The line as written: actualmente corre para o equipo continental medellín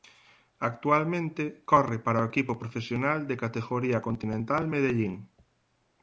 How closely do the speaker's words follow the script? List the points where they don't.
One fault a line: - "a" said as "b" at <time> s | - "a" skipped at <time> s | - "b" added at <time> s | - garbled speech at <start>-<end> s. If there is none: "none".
- "profesional de categoría" added at 2.6 s